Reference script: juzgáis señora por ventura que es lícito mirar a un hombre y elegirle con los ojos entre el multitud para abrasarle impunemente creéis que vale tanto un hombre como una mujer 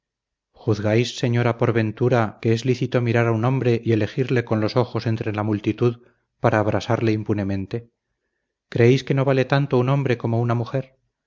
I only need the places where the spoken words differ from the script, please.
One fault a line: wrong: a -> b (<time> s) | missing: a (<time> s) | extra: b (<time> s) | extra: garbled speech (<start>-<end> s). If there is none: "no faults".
wrong: el -> la (5.3 s)
extra: no (9.1 s)